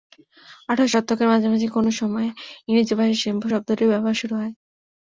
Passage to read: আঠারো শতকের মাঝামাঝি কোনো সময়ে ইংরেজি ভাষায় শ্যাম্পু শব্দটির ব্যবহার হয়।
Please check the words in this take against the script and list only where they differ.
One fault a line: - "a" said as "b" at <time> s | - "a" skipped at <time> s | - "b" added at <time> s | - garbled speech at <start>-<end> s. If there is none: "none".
- "শুরু" added at 4.2 s